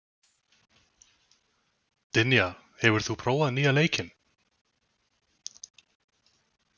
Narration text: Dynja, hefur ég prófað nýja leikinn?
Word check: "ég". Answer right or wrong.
wrong